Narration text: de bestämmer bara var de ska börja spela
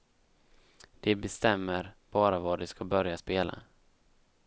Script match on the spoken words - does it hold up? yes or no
yes